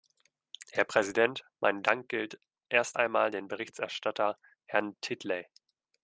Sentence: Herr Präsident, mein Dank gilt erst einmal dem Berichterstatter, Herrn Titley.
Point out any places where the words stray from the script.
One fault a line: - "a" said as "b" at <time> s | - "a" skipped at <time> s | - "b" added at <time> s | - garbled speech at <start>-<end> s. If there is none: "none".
none